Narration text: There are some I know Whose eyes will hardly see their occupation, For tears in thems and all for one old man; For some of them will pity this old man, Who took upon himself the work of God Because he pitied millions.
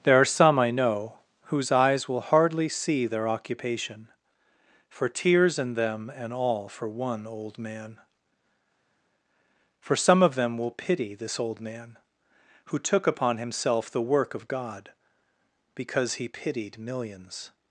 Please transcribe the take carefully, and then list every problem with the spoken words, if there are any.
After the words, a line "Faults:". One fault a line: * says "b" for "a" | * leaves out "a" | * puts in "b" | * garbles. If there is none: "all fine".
There are some I know Whose eyes will hardly see their occupation, For tears in them and all for one old man; For some of them will pity this old man, Who took upon himself the work of God Because he pitied millions.
Faults:
* says "them" for "thems"